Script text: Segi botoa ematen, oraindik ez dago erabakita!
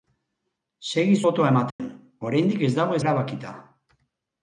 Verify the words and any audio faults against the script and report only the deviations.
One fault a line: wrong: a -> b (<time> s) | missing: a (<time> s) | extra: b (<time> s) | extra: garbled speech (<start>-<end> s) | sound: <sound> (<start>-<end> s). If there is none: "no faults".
sound: dropout (1.7-1.8 s)